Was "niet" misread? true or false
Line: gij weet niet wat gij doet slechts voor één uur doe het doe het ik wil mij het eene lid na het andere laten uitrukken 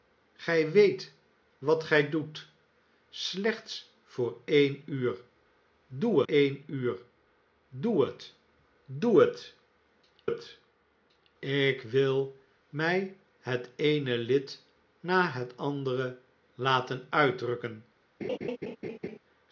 true